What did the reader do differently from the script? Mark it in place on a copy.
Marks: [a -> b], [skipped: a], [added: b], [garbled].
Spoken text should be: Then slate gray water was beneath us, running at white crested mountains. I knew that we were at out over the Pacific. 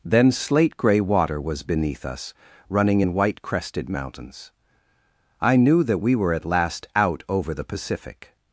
Then slate gray water was beneath us, running [at -> in] white crested mountains. I knew that we were at [added: last] out over the Pacific.